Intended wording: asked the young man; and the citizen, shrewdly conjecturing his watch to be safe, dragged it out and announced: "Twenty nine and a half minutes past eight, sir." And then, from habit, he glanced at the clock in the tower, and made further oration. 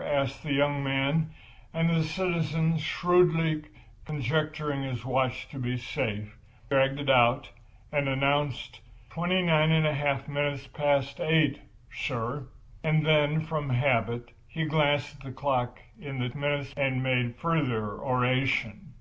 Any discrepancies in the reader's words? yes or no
yes